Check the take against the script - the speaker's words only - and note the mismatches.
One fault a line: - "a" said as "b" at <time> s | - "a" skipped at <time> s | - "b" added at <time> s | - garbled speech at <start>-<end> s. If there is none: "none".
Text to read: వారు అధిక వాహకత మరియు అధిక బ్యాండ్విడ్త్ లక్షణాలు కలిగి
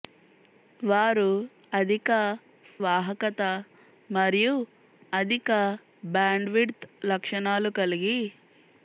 none